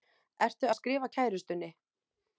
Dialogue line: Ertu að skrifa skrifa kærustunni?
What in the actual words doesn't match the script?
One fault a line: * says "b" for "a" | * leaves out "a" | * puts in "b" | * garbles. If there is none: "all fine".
* leaves out "skrifa"